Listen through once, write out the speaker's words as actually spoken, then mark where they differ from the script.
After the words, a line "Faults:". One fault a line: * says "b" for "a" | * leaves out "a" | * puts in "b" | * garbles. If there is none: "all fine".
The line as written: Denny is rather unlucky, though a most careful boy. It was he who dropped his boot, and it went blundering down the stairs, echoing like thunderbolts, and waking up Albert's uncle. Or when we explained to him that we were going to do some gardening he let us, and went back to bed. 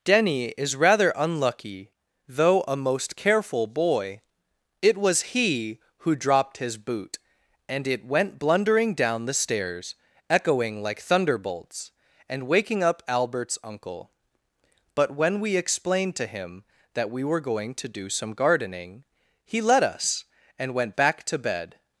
Denny is rather unlucky, though a most careful boy. It was he who dropped his boot, and it went blundering down the stairs, echoing like thunderbolts, and waking up Albert's uncle. But when we explained to him that we were going to do some gardening he let us, and went back to bed.
Faults:
* says "But" for "Or"